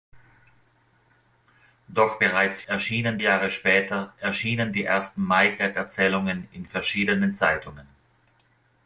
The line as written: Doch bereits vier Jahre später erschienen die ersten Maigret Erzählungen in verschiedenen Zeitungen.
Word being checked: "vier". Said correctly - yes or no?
no